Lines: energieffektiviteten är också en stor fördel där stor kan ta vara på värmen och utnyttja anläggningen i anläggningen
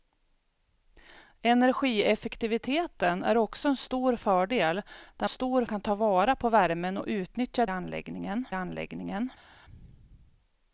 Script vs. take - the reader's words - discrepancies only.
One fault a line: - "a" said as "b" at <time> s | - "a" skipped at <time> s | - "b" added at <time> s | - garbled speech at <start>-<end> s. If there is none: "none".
none